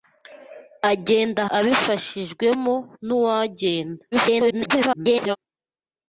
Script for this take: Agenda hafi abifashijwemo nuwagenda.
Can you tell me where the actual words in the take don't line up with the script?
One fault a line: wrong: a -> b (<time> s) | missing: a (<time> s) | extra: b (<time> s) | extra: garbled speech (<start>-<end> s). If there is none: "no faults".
missing: hafi (1.4 s)
extra: garbled speech (4.1-5.4 s)